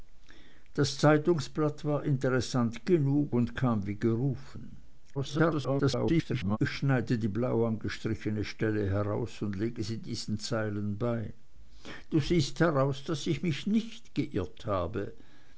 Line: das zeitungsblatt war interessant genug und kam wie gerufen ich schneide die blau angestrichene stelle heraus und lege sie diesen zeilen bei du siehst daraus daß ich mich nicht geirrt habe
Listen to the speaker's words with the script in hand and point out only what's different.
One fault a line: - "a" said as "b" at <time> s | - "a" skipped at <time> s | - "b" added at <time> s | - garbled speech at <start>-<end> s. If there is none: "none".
- garbled speech at 5.1-6.6 s